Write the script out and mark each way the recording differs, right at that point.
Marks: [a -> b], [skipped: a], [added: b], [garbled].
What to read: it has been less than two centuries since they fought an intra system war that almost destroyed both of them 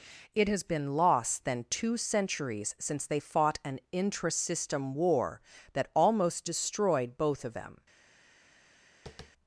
it has been [less -> loss] than two centuries since they fought an intra system war that almost destroyed both of them